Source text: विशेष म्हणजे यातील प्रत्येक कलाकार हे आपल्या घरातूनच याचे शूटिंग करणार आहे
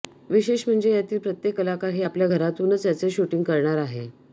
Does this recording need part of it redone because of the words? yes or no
no